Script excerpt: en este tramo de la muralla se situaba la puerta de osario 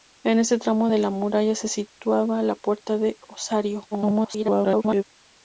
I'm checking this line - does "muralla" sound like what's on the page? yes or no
yes